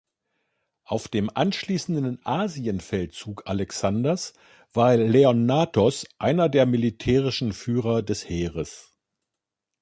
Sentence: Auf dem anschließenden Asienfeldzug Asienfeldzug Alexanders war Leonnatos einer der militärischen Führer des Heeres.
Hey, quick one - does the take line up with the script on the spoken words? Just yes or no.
no